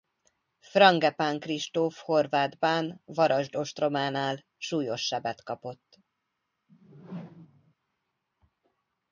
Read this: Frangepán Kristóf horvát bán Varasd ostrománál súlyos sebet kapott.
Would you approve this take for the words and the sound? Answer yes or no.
no